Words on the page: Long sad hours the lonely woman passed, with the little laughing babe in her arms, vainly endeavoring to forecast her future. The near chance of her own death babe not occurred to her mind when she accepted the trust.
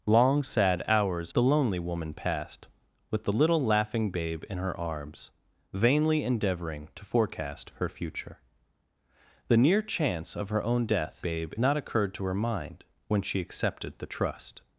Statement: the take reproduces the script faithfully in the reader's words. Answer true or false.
true